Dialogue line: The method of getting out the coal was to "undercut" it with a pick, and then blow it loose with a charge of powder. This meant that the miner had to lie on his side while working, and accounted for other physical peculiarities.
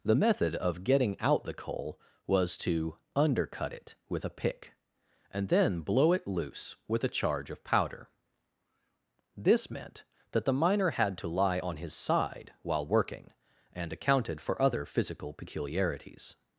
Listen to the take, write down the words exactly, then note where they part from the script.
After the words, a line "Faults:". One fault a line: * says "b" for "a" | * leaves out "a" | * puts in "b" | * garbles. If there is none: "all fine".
The method of getting out the coal was to "undercut" it with a pick, and then blow it loose with a charge of powder. This meant that the miner had to lie on his side while working, and accounted for other physical peculiarities.
Faults:
all fine